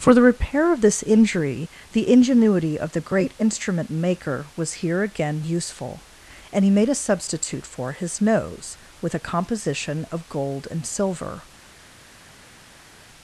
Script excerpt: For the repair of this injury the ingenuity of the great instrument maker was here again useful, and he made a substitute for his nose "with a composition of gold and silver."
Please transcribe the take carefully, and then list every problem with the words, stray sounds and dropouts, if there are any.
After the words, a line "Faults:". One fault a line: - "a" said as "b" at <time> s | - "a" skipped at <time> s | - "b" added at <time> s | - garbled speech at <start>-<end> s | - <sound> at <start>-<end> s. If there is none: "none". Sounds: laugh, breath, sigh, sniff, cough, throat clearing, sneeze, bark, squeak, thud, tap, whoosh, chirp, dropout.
For the repair of this injury the ingenuity of the great instrument maker was here again useful, and he made a substitute for his nose "with a composition of gold and silver."
Faults:
none